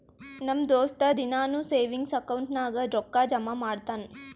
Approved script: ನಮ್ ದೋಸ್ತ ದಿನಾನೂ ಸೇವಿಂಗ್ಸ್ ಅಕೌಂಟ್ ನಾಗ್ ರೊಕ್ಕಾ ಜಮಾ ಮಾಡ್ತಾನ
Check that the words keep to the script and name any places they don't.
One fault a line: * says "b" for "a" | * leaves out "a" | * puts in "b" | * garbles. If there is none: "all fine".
all fine